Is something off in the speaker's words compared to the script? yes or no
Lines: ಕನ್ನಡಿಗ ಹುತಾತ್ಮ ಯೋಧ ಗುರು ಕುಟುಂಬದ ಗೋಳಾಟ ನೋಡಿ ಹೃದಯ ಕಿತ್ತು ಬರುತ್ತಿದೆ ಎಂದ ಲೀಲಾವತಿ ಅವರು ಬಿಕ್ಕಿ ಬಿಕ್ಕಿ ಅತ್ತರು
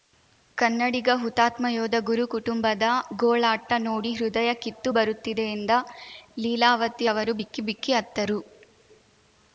no